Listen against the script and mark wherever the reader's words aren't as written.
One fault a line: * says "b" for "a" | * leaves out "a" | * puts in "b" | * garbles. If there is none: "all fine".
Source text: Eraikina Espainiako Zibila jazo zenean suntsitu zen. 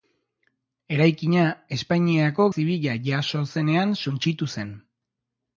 all fine